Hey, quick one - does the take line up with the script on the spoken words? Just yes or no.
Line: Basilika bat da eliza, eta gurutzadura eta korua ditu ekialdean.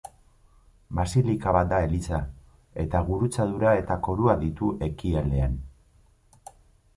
yes